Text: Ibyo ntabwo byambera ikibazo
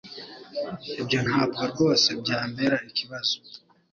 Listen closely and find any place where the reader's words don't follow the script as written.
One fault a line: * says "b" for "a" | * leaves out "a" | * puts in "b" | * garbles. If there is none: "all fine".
* puts in "rwose"